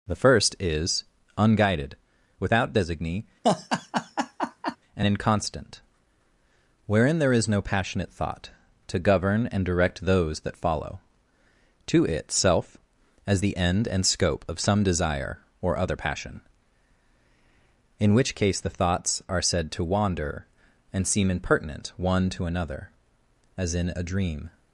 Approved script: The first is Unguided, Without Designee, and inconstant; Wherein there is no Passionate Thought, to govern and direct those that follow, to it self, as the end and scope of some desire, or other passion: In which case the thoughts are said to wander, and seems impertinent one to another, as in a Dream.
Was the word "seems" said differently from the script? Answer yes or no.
yes